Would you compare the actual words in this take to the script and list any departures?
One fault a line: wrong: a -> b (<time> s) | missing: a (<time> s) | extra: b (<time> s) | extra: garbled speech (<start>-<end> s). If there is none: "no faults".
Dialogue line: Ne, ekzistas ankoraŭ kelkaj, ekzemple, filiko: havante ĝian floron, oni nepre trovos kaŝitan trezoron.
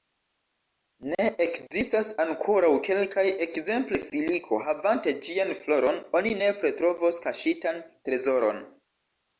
no faults